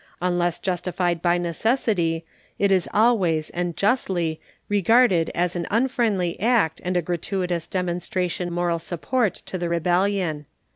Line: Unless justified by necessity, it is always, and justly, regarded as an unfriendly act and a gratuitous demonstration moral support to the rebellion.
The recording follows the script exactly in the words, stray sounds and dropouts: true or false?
true